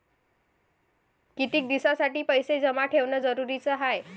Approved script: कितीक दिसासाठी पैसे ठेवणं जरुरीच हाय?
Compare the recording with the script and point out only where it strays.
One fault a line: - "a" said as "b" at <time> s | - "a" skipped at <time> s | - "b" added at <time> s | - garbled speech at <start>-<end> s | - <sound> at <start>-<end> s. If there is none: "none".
- "जमा" added at 2.6 s